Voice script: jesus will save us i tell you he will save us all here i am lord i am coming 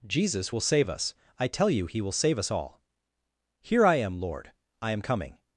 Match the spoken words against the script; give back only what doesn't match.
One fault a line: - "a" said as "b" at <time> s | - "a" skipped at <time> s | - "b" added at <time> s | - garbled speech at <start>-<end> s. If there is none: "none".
none